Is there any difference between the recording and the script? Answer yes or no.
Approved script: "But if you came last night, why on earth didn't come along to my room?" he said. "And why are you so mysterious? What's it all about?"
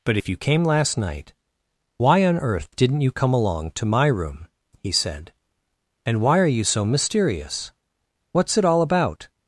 yes